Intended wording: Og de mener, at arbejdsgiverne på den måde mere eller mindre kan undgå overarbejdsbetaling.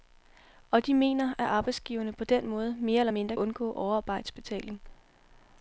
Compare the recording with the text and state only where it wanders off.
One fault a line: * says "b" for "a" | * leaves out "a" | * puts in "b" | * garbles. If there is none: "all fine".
* leaves out "kan"